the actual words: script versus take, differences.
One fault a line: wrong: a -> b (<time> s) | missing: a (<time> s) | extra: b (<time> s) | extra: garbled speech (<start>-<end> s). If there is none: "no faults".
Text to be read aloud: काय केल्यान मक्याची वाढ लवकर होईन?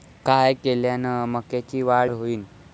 missing: लवकर (2.1 s)